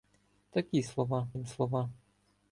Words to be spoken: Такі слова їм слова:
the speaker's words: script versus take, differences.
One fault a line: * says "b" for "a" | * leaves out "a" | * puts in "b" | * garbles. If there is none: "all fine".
all fine